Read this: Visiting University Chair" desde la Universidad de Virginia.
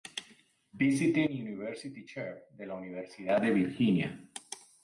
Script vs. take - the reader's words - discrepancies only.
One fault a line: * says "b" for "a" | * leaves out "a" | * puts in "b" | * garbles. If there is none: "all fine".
* says "de" for "desde"